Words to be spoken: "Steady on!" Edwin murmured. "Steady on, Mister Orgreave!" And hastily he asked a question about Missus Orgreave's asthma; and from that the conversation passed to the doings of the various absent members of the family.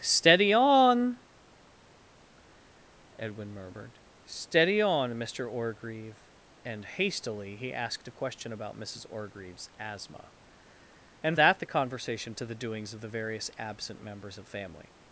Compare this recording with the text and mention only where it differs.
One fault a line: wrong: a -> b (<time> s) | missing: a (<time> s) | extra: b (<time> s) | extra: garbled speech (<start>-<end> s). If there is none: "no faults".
missing: from (11.4 s)
missing: passed (12.3 s)
missing: the (14.5 s)